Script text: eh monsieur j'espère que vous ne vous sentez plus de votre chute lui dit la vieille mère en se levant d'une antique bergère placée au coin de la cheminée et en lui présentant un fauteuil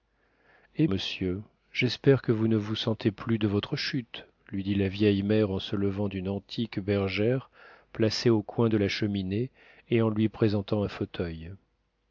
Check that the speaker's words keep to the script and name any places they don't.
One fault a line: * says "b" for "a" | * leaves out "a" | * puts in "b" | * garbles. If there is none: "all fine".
all fine